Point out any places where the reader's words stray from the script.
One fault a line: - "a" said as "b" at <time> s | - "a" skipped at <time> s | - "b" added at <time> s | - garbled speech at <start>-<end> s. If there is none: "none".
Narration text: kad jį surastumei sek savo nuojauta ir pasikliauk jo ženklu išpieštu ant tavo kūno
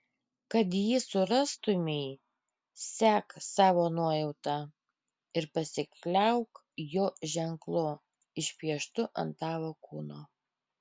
none